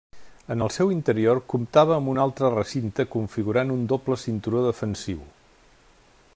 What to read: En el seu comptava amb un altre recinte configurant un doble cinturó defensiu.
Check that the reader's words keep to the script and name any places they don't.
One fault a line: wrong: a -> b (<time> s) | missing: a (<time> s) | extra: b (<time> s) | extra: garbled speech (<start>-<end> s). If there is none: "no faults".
extra: interior (0.9 s)